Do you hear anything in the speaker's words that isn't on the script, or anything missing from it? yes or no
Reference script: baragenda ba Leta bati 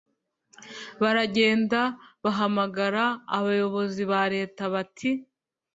yes